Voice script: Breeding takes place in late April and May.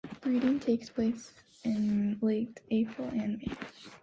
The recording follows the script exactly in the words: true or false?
true